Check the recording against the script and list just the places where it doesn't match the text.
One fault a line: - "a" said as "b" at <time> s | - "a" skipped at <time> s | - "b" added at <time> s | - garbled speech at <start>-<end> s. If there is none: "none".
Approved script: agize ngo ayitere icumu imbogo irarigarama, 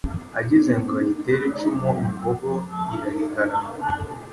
none